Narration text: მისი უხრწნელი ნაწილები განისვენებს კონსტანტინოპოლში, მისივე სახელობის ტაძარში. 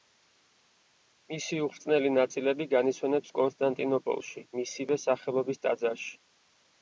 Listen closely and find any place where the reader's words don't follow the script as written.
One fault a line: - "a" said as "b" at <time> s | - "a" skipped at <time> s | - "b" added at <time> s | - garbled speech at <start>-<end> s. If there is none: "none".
none